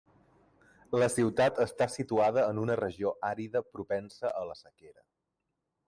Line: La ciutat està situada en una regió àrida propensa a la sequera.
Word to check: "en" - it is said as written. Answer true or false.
true